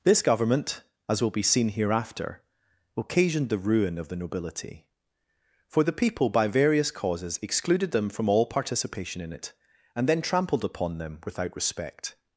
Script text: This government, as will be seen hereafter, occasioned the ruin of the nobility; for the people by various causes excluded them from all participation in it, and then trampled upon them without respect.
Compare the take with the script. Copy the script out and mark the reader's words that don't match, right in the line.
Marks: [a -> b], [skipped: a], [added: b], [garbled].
This government, as will be seen hereafter, occasioned the ruin of the nobility; for the people by various causes excluded them from all participation in it, and then trampled upon them without respect.